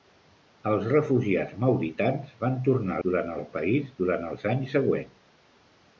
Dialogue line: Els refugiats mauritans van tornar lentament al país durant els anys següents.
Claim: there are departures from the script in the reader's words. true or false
true